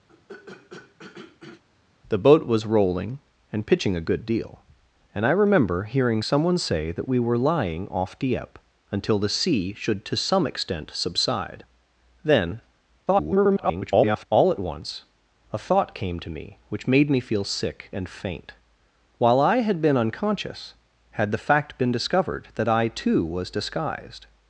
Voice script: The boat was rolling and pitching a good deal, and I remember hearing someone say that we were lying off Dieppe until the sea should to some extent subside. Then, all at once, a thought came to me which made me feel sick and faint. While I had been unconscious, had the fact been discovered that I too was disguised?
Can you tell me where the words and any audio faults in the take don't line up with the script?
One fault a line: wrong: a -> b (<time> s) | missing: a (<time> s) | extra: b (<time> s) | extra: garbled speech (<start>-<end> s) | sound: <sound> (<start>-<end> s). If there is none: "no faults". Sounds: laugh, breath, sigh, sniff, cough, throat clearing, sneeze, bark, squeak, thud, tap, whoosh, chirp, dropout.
sound: throat clearing (0.1-1.6 s)
extra: garbled speech (13.1-14.3 s)